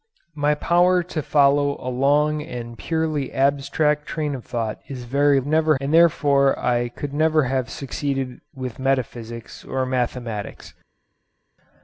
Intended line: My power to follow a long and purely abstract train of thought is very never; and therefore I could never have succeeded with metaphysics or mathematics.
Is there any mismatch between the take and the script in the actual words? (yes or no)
no